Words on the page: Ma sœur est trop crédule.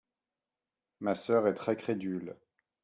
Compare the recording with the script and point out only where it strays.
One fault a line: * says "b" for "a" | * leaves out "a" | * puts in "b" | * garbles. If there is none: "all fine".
* says "très" for "trop"